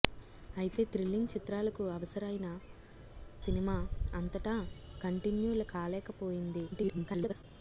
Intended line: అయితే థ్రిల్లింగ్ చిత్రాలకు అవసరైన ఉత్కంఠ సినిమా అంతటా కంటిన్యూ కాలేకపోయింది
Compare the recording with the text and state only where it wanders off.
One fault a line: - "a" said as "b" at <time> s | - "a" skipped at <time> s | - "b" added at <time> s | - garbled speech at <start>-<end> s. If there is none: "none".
- "ఉత్కంఠ" skipped at 2.5 s
- garbled speech at 6.7-7.4 s